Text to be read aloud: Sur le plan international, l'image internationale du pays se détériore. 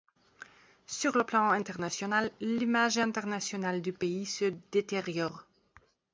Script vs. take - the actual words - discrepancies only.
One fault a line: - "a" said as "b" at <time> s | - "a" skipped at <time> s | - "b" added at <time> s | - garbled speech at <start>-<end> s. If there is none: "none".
none